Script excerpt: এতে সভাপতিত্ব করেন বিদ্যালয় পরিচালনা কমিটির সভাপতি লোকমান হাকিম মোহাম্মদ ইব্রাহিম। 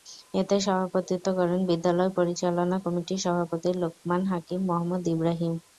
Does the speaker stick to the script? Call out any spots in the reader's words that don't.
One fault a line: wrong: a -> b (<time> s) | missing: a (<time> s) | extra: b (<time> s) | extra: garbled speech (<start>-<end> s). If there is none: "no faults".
no faults